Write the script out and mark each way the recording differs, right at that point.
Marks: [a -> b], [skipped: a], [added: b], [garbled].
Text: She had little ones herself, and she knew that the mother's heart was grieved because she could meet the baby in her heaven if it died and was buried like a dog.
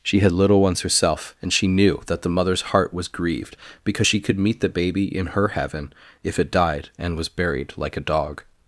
She had little ones herself, and she knew that the mother's heart was grieved because she could meet the baby in her heaven if it died and was buried like a dog.